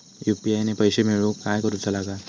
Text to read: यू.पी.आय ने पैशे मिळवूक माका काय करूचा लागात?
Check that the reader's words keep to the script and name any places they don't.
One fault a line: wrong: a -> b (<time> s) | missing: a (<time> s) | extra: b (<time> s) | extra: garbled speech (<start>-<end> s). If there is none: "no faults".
missing: माका (1.4 s)